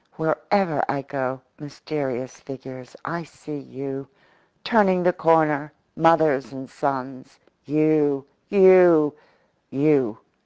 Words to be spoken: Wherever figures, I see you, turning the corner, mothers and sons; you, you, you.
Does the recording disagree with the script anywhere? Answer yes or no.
yes